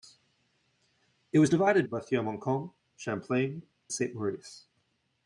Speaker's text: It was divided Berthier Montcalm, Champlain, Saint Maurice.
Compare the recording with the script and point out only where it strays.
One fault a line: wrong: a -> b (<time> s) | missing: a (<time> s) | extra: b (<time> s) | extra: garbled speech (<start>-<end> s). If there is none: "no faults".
no faults